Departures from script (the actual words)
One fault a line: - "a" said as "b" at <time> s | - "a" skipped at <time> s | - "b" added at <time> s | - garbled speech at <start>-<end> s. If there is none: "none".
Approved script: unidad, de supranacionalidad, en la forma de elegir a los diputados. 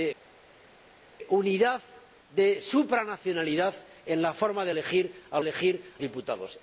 - "los" said as "elegir" at 5.4 s